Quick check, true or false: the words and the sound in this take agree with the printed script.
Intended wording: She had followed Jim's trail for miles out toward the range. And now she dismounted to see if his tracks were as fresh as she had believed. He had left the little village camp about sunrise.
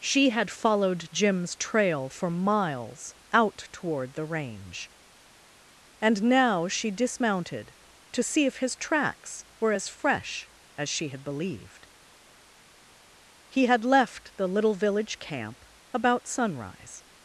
true